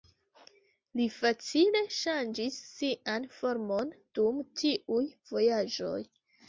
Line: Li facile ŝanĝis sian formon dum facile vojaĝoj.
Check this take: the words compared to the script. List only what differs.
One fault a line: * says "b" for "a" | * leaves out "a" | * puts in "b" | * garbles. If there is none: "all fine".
* says "tiuj" for "facile"